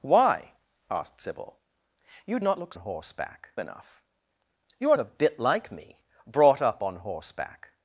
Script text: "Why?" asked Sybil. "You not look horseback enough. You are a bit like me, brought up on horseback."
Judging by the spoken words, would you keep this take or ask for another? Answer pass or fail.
pass